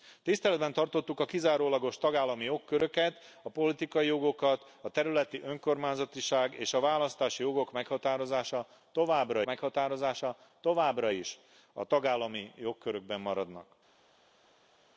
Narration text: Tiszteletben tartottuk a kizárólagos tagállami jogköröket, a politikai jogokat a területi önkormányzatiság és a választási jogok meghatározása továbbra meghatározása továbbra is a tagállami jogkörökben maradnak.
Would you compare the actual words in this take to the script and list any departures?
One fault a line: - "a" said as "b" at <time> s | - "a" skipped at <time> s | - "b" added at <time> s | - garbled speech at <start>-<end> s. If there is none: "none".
none